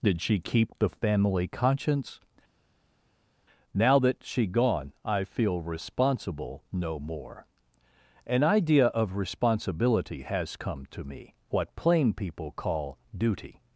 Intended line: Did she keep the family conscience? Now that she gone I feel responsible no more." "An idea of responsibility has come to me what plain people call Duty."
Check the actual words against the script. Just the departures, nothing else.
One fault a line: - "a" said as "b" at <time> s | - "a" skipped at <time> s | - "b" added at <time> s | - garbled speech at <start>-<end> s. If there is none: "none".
none